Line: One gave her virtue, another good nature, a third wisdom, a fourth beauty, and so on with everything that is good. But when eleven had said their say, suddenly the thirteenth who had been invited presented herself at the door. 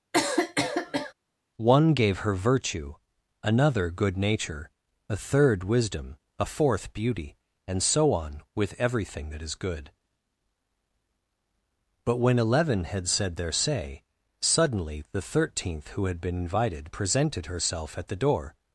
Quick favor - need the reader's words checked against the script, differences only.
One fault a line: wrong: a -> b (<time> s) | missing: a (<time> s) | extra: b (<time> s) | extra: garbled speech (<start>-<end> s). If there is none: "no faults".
no faults